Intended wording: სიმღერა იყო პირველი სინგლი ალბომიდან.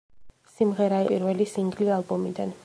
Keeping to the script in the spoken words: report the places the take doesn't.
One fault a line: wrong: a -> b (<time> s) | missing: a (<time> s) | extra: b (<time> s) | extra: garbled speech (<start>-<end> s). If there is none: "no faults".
missing: იყო (1.0 s)